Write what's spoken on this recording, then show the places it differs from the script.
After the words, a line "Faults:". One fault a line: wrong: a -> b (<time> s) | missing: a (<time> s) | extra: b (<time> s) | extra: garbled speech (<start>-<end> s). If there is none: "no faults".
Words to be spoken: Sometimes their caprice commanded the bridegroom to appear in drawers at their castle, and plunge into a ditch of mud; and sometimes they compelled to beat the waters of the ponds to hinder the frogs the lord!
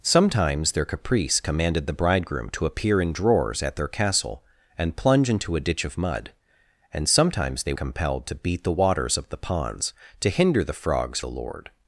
Sometimes their caprice commanded the bridegroom to appear in drawers at their castle, and plunge into a ditch of mud; and sometimes they compelled to beat the waters of the ponds to hinder the frogs the lord!
Faults:
no faults